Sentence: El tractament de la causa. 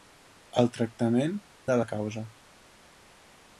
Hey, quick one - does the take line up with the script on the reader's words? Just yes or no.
yes